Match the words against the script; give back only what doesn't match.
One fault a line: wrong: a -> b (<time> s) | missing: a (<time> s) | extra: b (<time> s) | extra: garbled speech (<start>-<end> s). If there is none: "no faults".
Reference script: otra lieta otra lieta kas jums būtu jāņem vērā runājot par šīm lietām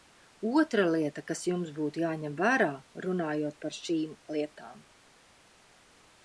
missing: otra lieta (1.2 s)